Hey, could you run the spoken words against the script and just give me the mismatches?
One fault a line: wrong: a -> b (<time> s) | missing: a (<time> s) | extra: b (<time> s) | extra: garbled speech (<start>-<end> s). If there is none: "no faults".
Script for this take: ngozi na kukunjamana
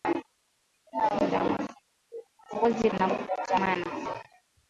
no faults